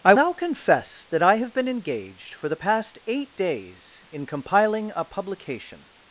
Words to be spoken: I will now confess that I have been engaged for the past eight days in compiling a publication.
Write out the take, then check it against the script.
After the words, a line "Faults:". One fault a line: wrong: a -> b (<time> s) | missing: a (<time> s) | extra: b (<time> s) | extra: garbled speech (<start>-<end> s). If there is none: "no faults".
I now confess that I have been engaged for the past eight days in compiling a publication.
Faults:
missing: will (0.1 s)